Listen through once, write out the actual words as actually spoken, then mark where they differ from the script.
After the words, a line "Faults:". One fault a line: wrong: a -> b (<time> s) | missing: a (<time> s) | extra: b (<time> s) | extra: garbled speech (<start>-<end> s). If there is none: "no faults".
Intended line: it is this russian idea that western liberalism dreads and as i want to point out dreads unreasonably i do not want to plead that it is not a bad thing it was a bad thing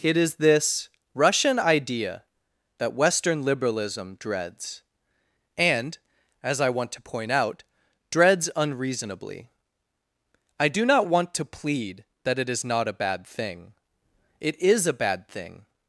it is this russian idea that western liberalism dreads and as i want to point out dreads unreasonably i do not want to plead that it is not a bad thing it is a bad thing
Faults:
wrong: was -> is (14.6 s)